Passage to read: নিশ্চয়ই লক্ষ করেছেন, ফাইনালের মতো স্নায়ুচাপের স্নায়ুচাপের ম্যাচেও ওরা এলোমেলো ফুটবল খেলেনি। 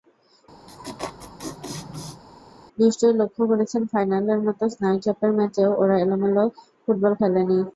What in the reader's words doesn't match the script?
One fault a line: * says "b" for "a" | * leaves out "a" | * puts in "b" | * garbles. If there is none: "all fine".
* leaves out "স্নায়ুচাপের"